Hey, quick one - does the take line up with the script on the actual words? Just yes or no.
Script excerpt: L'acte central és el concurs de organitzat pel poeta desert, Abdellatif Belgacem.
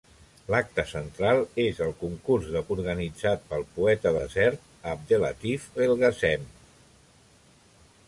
yes